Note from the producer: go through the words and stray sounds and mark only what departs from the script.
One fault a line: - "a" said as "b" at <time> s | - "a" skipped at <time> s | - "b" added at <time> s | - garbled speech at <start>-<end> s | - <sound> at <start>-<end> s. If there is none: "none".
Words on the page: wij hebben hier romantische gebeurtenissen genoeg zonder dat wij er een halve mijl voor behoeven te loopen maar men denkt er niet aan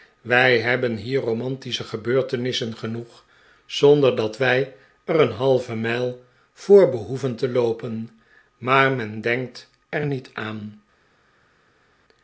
none